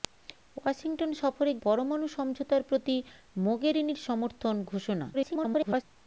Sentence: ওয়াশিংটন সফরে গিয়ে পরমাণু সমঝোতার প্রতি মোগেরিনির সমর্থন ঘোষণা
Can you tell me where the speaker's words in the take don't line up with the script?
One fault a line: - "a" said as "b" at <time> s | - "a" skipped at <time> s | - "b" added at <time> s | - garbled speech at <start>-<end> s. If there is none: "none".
- "গিয়ে" skipped at 1.5 s
- garbled speech at 5.1-5.8 s